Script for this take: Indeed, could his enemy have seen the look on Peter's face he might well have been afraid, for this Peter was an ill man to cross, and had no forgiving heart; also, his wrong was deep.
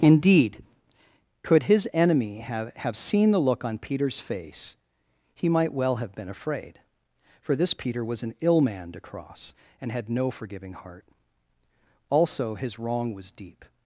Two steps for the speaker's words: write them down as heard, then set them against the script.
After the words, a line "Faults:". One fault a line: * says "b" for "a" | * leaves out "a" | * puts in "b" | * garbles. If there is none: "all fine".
Indeed, could his enemy have have seen the look on Peter's face he might well have been afraid, for this Peter was an ill man to cross, and had no forgiving heart; also, his wrong was deep.
Faults:
* puts in "have"